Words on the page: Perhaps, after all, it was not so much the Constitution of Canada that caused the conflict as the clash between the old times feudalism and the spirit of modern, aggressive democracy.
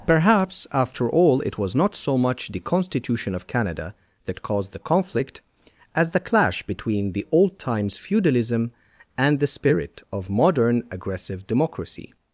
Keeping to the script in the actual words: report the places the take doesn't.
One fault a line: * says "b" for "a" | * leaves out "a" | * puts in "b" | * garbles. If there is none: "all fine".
all fine